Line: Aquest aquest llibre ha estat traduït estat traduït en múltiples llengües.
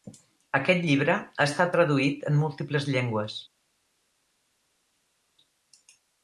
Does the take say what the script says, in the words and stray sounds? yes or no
no